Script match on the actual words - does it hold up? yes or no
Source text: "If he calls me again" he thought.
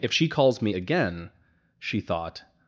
no